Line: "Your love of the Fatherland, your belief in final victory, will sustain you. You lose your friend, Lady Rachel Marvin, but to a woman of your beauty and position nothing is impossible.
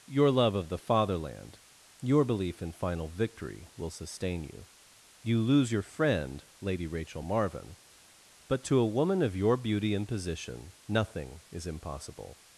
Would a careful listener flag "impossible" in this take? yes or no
no